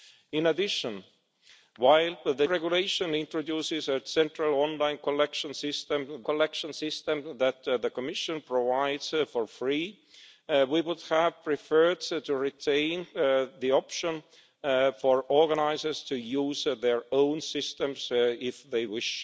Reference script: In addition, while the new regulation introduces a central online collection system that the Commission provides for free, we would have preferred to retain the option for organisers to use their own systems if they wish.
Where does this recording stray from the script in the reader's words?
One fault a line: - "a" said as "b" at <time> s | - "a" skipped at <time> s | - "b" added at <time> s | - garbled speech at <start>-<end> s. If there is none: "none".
- "new" skipped at 2.5 s
- "collection system" added at 6.2 s